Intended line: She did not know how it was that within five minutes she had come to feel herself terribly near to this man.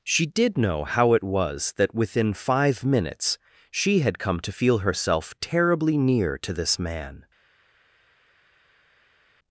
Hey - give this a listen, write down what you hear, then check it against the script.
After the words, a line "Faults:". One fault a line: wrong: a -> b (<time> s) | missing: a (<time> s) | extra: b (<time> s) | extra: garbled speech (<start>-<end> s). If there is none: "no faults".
She did know how it was that within five minutes she had come to feel herself terribly near to this man.
Faults:
missing: not (0.6 s)